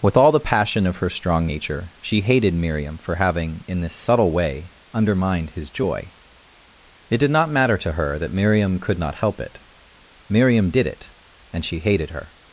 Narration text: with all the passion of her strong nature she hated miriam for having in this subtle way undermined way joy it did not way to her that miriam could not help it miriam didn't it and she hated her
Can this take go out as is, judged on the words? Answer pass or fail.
fail